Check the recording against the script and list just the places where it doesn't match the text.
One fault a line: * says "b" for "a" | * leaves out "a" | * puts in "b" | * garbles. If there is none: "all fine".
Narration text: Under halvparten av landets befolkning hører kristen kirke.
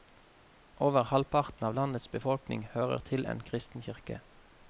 * says "Over" for "Under"
* puts in "til en"